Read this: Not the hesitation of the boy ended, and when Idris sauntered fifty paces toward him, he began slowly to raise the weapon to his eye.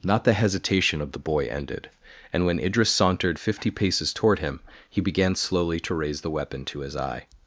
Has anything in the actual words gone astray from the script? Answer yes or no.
no